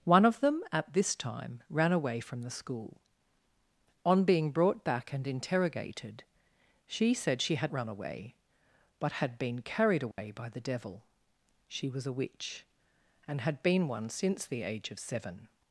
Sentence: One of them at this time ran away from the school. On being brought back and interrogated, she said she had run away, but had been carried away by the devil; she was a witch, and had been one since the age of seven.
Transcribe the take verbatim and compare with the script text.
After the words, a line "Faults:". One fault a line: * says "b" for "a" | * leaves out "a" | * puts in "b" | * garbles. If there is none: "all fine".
One of them at this time ran away from the school. On being brought back and interrogated, she said she had run away, but had been carried away by the devil; she was a witch, and had been one since the age of seven.
Faults:
all fine